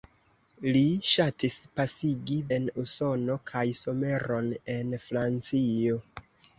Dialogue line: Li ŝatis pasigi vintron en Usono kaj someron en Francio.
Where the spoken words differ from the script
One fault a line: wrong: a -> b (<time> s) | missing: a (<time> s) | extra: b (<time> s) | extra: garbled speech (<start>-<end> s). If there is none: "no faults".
missing: vintron (2.4 s)